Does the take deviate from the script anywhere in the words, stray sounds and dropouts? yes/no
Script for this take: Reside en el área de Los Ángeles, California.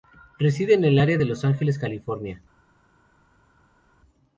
no